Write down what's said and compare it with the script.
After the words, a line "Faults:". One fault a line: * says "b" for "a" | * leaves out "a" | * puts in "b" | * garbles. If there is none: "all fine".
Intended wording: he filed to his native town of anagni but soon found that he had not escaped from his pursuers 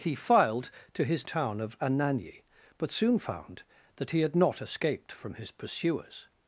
he filed to his town of anagni but soon found that he had not escaped from his pursuers
Faults:
* leaves out "native"